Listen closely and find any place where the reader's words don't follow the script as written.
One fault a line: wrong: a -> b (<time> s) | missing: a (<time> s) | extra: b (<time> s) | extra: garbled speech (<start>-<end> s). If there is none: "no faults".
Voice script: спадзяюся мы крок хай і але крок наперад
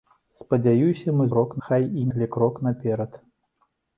no faults